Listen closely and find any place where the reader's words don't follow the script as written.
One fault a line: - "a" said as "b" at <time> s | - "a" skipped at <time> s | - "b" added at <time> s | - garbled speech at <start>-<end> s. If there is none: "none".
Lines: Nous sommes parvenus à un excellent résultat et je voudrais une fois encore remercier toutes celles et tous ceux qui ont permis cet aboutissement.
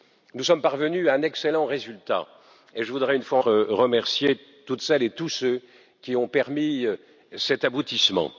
- "encore" skipped at 3.4 s